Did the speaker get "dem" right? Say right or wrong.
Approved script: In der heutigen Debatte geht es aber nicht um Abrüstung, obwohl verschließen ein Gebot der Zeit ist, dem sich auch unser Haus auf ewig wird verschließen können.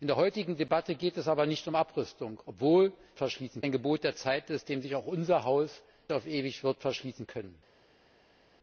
right